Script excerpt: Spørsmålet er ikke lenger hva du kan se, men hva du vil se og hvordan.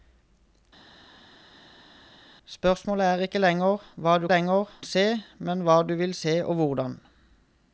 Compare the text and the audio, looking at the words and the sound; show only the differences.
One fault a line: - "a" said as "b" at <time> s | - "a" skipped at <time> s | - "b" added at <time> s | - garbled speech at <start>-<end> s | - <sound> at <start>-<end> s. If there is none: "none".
- "kan" said as "lenger" at 4.3 s